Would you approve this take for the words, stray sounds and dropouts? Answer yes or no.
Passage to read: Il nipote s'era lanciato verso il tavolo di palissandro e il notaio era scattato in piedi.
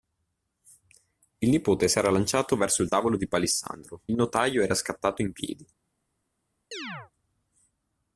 no